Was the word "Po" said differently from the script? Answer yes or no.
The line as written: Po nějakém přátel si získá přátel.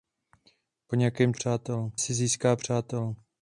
no